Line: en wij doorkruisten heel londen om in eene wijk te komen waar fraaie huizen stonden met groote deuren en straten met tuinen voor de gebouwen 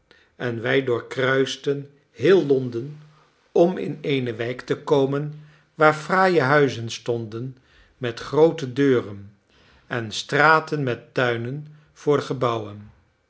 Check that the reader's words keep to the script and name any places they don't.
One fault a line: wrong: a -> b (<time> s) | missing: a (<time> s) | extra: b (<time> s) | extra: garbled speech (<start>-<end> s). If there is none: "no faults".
no faults